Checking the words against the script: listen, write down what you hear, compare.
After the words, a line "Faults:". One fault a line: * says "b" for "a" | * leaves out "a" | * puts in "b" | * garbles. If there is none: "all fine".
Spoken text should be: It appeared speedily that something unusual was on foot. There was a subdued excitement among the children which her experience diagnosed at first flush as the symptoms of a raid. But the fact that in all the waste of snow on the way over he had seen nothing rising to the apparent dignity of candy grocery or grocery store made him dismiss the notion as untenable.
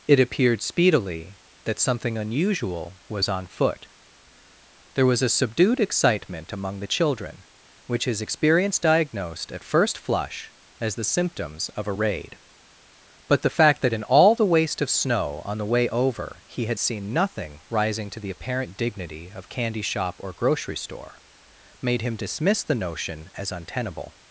It appeared speedily that something unusual was on foot. There was a subdued excitement among the children which his experience diagnosed at first flush as the symptoms of a raid. But the fact that in all the waste of snow on the way over he had seen nothing rising to the apparent dignity of candy shop or grocery store made him dismiss the notion as untenable.
Faults:
* says "his" for "her"
* says "shop" for "grocery"